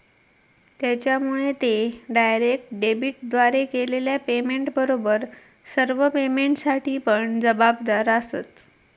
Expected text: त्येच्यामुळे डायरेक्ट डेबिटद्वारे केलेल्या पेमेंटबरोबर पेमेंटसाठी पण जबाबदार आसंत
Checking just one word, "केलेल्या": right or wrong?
right